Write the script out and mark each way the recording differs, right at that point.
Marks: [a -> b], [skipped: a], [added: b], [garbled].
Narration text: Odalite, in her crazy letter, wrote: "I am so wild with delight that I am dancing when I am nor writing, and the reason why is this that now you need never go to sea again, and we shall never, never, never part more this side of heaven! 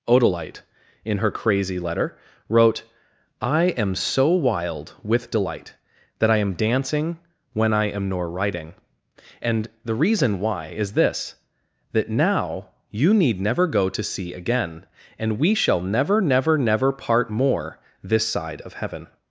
Odalite, in her crazy letter, wrote: "I am so wild with delight that I am dancing when I am nor writing, and the reason why is this that now you need never go to sea again, and we shall never, never, never part more this side of heaven!